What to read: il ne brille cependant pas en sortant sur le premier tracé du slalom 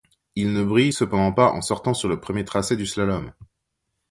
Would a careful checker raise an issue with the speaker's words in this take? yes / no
no